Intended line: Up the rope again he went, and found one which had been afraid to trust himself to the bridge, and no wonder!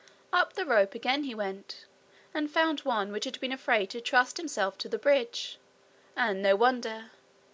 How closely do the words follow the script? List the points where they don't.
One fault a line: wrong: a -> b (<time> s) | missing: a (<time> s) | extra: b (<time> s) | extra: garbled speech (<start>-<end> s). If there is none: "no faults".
no faults